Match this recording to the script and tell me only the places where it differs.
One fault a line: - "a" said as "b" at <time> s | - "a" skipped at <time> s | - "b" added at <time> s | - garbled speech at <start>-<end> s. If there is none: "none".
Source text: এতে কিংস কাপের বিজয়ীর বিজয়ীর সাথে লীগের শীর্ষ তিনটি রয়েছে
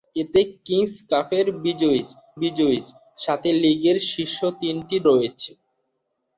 none